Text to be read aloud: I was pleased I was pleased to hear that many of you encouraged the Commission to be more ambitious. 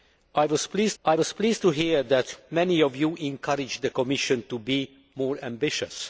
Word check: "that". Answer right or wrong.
right